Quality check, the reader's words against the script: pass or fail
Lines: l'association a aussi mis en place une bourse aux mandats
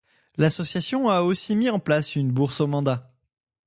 pass